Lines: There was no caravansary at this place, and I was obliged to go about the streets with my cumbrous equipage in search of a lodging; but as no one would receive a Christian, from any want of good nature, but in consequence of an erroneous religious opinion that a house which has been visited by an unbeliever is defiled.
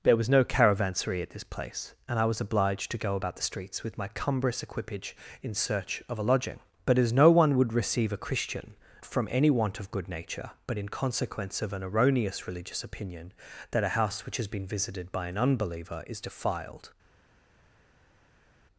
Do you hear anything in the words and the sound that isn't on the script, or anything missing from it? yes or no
no